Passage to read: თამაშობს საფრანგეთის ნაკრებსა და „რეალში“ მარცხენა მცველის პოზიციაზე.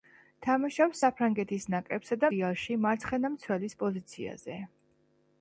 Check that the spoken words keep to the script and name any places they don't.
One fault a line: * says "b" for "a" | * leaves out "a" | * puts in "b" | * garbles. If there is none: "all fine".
all fine